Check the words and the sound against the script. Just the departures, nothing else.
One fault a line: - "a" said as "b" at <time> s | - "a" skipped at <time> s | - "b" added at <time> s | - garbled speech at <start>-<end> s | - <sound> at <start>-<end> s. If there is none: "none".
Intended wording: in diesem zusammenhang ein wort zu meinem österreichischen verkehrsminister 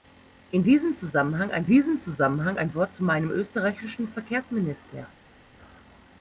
- "diesem zusammenhang ein" added at 1.7 s